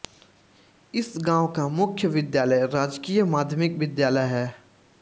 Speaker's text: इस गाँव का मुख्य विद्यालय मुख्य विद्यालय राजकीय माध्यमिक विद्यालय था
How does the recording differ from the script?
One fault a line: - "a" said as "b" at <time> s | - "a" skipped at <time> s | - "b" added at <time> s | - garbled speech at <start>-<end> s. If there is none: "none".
- "मुख्य विद्यालय" skipped at 2.6 s
- "था" said as "है" at 4.3 s